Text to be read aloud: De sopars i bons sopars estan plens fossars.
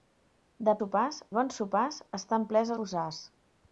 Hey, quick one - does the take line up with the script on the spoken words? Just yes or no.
yes